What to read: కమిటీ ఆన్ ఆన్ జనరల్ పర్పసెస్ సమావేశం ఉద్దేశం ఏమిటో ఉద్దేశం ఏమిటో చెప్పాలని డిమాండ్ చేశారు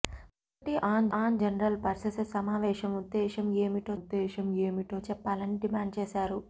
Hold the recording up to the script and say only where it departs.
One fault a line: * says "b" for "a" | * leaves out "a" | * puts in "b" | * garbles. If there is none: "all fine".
all fine